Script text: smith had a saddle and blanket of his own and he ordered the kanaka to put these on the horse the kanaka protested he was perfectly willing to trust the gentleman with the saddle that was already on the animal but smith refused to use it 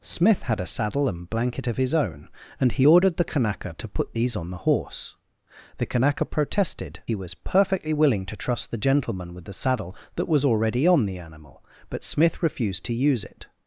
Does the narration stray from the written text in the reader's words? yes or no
no